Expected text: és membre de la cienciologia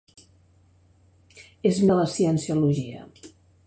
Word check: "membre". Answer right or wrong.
wrong